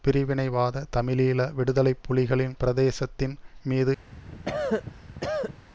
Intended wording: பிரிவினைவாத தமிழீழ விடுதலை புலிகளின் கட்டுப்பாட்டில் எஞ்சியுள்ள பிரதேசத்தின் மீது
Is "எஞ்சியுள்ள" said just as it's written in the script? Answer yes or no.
no